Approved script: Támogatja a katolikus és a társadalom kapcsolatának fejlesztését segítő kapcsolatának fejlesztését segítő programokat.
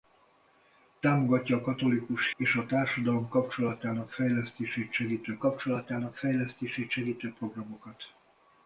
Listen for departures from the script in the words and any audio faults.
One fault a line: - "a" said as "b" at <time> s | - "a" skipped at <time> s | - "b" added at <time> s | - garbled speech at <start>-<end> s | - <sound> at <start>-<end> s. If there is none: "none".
none